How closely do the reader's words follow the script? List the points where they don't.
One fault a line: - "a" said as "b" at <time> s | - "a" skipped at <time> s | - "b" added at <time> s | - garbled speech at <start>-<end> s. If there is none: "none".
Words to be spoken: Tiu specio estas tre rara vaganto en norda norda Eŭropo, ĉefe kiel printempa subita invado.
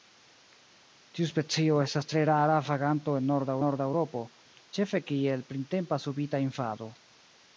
none